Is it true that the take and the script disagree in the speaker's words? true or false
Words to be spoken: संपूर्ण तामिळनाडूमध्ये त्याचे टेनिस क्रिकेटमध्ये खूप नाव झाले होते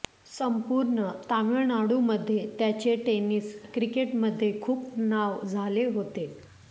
false